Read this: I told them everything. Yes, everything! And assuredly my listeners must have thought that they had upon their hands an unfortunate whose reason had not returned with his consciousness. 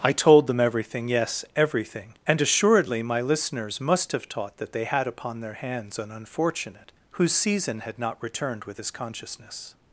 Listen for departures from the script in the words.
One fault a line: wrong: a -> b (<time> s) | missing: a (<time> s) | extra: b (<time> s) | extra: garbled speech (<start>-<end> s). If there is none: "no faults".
wrong: thought -> taught (4.3 s)
wrong: reason -> season (7.3 s)